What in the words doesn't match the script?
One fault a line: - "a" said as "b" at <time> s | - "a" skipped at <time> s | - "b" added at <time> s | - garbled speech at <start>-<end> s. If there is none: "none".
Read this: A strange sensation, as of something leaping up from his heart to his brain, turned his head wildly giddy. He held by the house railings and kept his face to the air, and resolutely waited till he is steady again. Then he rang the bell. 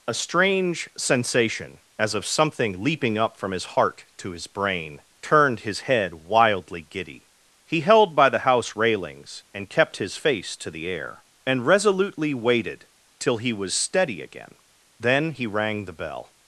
- "is" said as "was" at 13.5 s